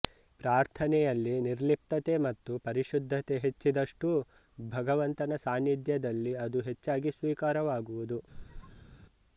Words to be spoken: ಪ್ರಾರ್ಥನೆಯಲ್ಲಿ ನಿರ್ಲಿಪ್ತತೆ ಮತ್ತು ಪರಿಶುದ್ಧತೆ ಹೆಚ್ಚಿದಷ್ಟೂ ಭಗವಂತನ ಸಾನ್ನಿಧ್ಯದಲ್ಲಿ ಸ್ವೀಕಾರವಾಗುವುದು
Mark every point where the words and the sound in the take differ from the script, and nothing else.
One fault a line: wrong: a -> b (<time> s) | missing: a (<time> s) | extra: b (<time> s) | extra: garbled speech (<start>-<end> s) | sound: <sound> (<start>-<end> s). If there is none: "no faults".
extra: ಅದು ಹೆಚ್ಚಾಗಿ (6.4 s)
sound: squeak (8.3-9.0 s)